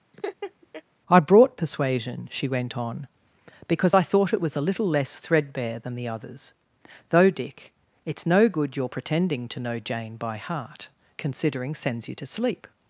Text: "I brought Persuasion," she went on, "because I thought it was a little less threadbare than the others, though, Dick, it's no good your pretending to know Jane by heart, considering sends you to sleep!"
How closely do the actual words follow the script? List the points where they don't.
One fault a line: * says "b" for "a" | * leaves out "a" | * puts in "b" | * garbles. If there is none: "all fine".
all fine